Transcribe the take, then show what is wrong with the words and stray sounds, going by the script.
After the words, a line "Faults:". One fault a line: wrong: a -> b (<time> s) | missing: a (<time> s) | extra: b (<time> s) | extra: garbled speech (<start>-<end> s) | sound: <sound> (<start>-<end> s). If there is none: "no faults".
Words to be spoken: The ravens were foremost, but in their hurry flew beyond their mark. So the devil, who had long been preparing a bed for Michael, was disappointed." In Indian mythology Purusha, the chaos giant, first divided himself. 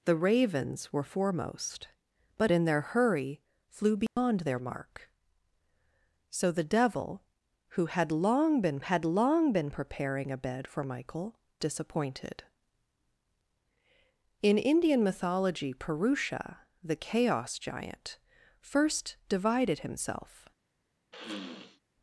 The ravens were foremost, but in their hurry flew beyond their mark. So the devil, who had long been had long been preparing a bed for Michael, disappointed." In Indian mythology Purusha, the chaos giant, first divided himself.
Faults:
sound: dropout (4.1-4.2 s)
extra: had long been (8.8 s)
missing: was (11.4 s)
sound: sniff (21.1-21.8 s)